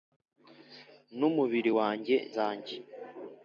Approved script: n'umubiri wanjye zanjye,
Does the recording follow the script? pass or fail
pass